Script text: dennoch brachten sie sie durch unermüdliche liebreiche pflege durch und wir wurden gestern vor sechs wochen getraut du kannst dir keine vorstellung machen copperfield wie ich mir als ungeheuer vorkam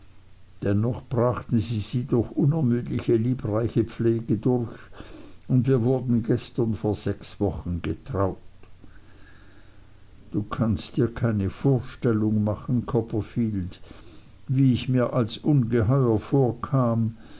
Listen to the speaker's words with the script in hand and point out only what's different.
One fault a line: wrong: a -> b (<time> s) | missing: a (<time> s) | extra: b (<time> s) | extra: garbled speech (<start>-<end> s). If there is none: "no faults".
no faults